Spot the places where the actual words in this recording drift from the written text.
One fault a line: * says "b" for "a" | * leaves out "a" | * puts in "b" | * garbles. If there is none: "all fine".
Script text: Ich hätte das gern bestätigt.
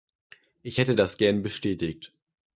all fine